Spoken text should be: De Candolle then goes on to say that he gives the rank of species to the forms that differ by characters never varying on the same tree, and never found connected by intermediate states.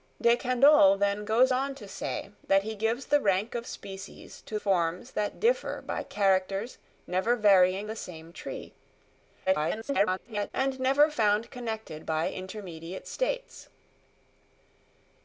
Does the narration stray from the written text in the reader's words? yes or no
yes